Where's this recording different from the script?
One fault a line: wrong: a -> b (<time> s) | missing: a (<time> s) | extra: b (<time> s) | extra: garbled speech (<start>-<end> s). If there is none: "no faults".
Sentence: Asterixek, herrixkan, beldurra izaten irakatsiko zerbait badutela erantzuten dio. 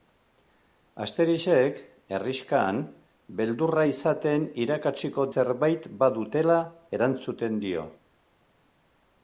no faults